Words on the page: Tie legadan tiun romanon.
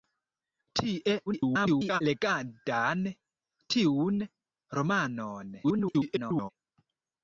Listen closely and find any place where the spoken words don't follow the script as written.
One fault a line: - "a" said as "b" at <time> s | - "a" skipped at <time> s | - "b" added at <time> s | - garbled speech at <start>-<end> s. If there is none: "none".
- garbled speech at 1.3-2.0 s
- garbled speech at 5.6-6.5 s